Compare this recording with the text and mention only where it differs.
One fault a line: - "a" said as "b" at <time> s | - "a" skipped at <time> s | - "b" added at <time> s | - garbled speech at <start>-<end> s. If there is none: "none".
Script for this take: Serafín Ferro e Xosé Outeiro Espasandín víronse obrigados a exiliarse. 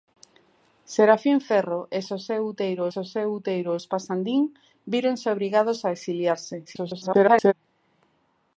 - "Xosé Outeiro" added at 2.9 s
- garbled speech at 6.7-7.5 s